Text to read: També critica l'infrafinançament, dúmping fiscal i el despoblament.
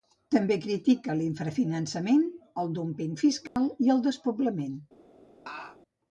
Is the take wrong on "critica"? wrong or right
right